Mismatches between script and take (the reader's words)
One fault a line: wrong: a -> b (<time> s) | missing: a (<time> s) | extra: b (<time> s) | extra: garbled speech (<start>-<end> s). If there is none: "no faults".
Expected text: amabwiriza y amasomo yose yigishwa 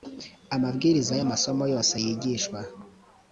no faults